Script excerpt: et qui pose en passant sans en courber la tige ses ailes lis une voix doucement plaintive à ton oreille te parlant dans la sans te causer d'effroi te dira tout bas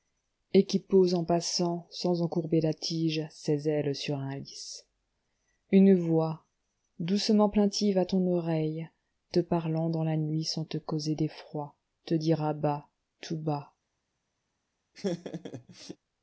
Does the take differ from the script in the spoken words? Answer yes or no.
yes